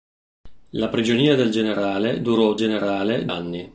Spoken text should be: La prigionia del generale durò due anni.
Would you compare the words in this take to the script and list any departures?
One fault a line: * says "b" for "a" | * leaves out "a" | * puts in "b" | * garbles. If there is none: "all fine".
* says "generale" for "due"